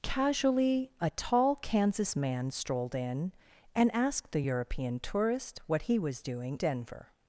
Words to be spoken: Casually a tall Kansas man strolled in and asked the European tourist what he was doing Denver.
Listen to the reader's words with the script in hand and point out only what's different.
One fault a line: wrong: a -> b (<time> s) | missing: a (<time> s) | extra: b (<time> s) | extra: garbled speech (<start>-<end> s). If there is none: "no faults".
no faults